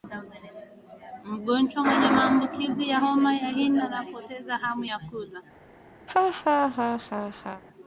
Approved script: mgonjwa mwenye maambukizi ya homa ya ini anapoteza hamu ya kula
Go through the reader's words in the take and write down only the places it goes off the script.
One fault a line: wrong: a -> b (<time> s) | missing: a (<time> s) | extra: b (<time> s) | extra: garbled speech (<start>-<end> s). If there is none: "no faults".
no faults